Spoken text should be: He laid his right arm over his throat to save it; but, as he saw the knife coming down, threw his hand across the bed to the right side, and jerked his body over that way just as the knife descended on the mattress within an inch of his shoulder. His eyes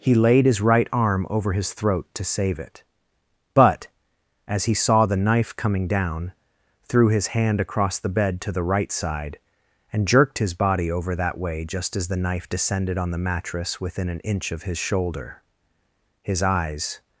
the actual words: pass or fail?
pass